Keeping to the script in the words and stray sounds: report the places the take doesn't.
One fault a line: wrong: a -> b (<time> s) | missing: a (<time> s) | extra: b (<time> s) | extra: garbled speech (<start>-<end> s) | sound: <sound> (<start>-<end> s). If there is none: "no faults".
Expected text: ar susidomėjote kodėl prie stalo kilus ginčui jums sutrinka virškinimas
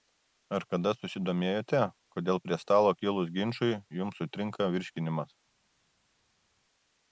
extra: kada (0.7 s)